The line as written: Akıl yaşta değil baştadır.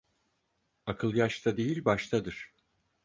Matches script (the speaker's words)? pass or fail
pass